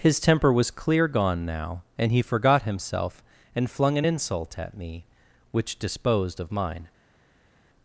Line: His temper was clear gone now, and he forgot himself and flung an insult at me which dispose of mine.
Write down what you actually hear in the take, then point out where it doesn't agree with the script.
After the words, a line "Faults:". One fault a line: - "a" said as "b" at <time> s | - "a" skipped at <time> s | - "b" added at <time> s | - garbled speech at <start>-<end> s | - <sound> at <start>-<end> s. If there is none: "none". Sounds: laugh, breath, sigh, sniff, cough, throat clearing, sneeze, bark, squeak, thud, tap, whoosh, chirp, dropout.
His temper was clear gone now, and he forgot himself and flung an insult at me which disposed of mine.
Faults:
- "dispose" said as "disposed" at 5.8 s